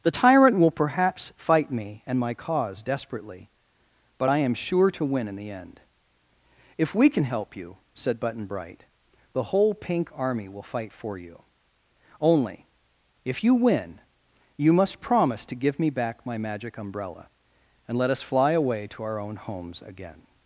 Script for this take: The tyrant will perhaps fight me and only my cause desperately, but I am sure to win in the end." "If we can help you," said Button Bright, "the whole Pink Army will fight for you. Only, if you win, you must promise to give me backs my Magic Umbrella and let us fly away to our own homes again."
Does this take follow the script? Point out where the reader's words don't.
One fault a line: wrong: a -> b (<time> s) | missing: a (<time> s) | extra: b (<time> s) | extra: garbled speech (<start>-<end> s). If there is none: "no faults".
missing: only (2.2 s)
wrong: backs -> back (15.9 s)